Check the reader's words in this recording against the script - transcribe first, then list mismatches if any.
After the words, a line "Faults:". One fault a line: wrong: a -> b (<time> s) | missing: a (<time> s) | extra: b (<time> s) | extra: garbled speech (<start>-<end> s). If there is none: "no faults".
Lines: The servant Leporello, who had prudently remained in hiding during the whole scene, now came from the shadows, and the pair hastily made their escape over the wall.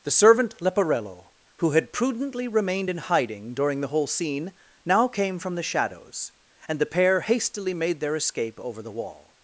The servant Leporello, who had prudently remained in hiding during the whole scene, now came from the shadows, and the pair hastily made their escape over the wall.
Faults:
no faults